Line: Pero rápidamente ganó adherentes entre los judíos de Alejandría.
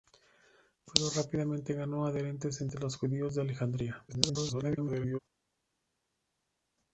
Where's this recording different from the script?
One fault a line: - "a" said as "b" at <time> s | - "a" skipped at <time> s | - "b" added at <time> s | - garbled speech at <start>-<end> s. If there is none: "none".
- garbled speech at 4.1-5.2 s